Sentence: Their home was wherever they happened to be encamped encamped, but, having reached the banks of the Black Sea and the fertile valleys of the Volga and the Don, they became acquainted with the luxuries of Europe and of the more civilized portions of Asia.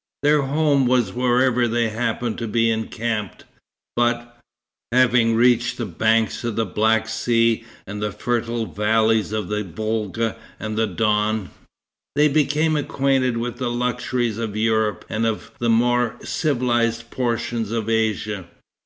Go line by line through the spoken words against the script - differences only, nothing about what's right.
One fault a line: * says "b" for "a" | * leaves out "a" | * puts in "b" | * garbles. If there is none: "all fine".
* leaves out "encamped"